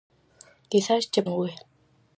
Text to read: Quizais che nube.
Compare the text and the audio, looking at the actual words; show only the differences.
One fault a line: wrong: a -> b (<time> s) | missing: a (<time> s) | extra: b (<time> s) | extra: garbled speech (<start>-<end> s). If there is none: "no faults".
no faults